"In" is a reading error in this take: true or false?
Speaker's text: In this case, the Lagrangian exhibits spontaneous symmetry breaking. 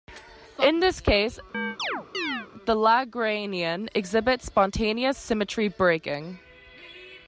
false